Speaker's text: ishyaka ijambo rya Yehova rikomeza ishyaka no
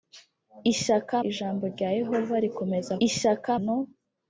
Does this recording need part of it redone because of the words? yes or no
no